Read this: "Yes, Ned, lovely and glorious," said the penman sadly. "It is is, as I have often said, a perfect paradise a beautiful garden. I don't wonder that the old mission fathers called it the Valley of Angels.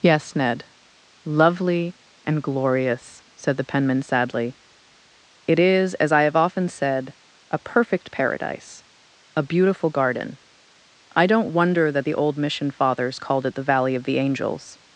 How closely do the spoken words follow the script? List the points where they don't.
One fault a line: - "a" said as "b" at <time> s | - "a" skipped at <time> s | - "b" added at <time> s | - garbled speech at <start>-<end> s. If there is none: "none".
- "is" skipped at 5.9 s
- "the" added at 14.0 s